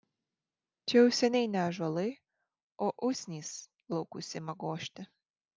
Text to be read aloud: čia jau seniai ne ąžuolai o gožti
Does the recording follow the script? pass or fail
fail